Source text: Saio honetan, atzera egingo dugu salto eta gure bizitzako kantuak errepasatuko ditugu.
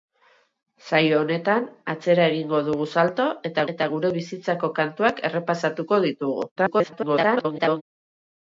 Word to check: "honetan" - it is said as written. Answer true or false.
true